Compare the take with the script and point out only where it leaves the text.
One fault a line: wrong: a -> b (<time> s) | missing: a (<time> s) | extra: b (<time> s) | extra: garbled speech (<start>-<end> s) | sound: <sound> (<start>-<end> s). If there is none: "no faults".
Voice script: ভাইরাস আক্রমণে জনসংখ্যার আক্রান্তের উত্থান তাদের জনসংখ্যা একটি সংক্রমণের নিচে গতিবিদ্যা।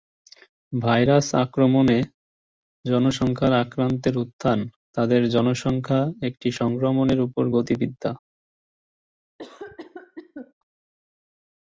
wrong: নিচে -> উপর (7.2 s)
sound: cough (9.4-10.5 s)